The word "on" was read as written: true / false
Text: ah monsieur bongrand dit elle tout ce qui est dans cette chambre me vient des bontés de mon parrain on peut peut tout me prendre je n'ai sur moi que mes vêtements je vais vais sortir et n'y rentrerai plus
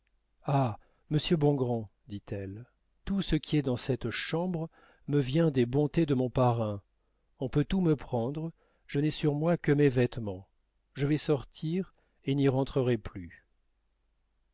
true